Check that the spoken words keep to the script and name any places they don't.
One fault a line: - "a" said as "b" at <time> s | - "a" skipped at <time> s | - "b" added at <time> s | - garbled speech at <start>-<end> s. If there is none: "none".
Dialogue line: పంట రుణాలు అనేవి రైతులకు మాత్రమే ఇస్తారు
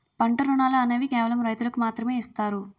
- "కేవలం" added at 1.1 s